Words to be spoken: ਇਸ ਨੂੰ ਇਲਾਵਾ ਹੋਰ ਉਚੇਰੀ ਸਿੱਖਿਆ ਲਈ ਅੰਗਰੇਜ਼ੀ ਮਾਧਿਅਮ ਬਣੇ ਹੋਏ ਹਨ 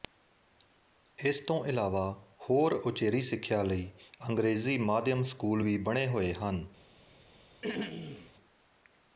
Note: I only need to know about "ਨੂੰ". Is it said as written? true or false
false